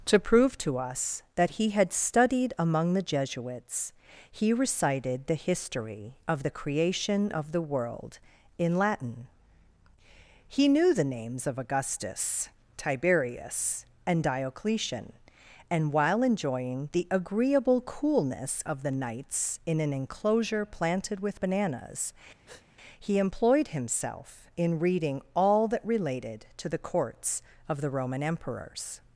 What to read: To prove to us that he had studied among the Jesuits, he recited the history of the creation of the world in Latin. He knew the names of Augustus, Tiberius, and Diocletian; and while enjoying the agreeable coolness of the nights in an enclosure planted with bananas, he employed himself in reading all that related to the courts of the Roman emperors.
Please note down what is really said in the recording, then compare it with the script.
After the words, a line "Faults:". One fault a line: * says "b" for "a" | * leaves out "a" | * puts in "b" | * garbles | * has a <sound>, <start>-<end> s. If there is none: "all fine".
To prove to us that he had studied among the Jesuits, he recited the history of the creation of the world in Latin. He knew the names of Augustus, Tiberius, and Diocletian; and while enjoying the agreeable coolness of the nights in an enclosure planted with bananas, he employed himself in reading all that related to the courts of the Roman emperors.
Faults:
* has a breath, 22.5-22.7 s